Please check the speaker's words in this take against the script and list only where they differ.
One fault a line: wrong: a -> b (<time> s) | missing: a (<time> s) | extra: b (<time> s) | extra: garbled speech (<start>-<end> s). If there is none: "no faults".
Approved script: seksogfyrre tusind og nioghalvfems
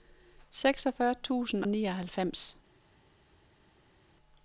missing: og (1.6 s)